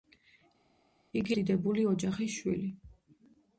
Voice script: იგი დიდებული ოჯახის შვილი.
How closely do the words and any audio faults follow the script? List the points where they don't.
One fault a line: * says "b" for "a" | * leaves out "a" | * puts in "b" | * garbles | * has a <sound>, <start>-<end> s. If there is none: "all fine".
all fine